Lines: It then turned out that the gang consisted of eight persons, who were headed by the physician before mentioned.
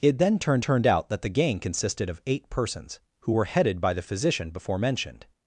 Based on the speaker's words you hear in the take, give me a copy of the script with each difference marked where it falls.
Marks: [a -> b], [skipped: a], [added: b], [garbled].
It then turned [added: turned] out that the gang consisted of eight persons, who were headed by the physician before mentioned.